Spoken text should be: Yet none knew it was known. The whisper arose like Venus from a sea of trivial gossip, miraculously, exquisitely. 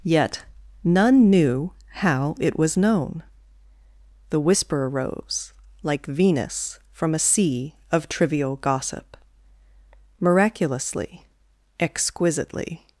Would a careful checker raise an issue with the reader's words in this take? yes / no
yes